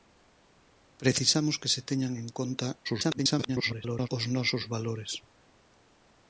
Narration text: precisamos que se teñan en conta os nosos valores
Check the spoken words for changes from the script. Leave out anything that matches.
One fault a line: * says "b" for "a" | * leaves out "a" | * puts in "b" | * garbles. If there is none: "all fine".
* garbles